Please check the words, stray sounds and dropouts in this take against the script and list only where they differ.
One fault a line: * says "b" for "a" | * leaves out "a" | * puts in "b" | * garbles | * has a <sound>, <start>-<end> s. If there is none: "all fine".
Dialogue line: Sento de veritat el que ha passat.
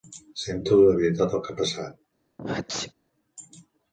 * has a sneeze, 2.4-2.9 s